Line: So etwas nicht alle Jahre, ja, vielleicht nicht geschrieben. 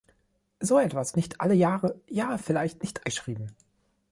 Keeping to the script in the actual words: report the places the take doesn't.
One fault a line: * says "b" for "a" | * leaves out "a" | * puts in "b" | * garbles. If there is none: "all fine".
all fine